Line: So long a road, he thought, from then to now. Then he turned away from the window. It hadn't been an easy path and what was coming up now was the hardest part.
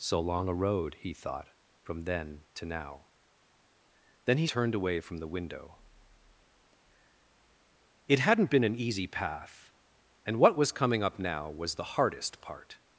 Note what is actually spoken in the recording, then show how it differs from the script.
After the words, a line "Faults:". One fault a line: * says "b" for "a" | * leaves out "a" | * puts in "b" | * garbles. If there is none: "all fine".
So long a road, he thought, from then to now. Then he turned away from the window. It hadn't been an easy path and what was coming up now was the hardest part.
Faults:
all fine